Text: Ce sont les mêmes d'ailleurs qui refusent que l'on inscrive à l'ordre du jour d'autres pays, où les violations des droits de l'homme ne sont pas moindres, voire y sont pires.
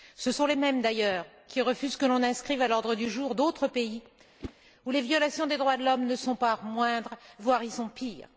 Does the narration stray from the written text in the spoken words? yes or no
no